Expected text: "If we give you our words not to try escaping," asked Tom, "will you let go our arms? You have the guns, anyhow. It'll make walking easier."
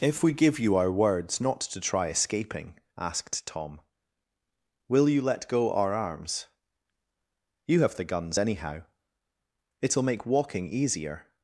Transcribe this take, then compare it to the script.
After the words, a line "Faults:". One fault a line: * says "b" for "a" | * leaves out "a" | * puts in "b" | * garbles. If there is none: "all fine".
"If we give you our words not to try escaping," asked Tom, "will you let go our arms? You have the guns, anyhow. It'll make walking easier."
Faults:
all fine